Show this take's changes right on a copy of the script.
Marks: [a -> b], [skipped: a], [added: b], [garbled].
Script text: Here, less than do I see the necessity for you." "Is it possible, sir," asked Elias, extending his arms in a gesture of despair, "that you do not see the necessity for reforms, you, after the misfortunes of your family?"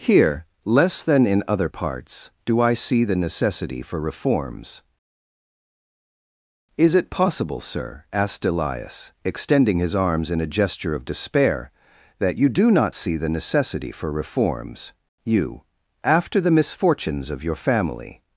Here, less than [added: in other parts] do I see the necessity for [you." -> reforms] "Is it possible, sir," asked Elias, extending his arms in a gesture of despair, "that you do not see the necessity for reforms, you, after the misfortunes of your family?"